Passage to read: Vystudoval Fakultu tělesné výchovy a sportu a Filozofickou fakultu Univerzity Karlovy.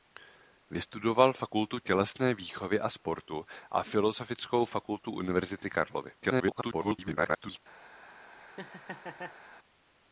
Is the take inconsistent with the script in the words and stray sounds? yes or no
yes